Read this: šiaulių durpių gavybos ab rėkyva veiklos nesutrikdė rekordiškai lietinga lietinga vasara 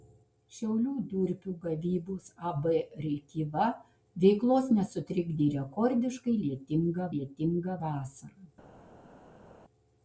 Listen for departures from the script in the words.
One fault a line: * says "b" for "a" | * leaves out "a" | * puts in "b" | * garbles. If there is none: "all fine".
all fine